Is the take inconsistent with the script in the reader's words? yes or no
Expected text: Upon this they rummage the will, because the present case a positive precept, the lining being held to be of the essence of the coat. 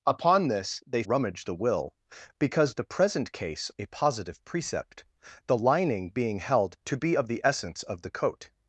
no